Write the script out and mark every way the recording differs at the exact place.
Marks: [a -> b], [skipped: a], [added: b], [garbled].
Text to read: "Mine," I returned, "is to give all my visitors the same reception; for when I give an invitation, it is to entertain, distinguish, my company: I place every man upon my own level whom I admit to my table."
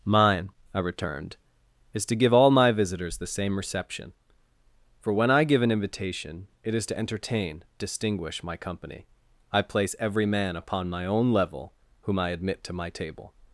"Mine," I returned, "is to give all my visitors the same reception; for when I give an invitation, it is to entertain, distinguish, my company: I place every man upon my own level whom I admit to my table."